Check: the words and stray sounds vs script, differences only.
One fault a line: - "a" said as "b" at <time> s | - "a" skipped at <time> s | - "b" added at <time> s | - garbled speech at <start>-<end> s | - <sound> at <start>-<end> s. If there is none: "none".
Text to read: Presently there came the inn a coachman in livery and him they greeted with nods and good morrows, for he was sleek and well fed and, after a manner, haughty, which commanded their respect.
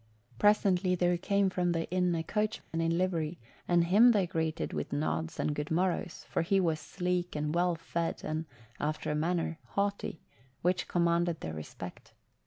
- "from" added at 1.5 s
- dropout at 2.6-2.7 s